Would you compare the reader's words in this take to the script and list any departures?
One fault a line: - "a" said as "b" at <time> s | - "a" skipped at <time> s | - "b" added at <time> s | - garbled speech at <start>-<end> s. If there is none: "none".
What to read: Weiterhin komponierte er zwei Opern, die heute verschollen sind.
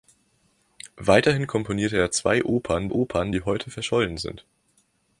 - "Opern" added at 2.9 s